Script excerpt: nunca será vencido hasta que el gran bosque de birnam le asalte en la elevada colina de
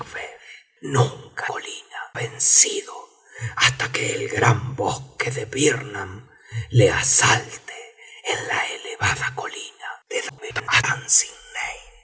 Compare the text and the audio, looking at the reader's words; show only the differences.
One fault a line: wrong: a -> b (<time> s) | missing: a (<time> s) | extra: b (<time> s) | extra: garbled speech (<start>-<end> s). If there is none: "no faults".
wrong: será -> colina (1.4 s)
extra: garbled speech (10.3-10.8 s)